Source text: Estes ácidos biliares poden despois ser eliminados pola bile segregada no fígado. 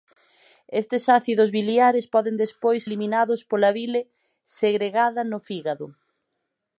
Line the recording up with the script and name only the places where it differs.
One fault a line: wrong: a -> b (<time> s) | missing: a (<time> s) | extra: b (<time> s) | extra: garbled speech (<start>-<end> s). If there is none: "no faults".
missing: ser (2.8 s)